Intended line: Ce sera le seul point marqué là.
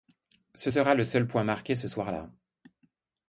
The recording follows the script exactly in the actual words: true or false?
false